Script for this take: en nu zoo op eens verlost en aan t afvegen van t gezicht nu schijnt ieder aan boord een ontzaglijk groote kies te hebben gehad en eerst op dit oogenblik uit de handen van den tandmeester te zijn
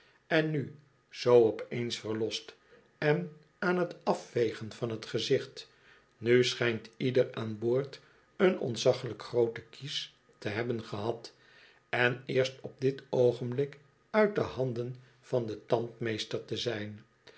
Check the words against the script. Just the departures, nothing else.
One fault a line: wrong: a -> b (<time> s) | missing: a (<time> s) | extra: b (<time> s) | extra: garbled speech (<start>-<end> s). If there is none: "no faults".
no faults